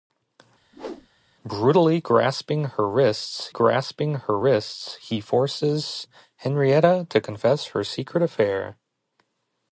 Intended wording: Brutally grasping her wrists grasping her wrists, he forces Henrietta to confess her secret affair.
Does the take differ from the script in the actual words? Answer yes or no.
no